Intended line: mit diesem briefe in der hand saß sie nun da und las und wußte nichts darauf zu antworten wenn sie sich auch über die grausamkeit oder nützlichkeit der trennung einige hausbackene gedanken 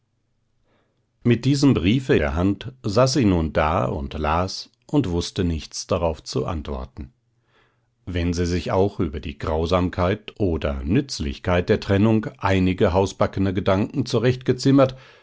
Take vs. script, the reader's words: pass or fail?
fail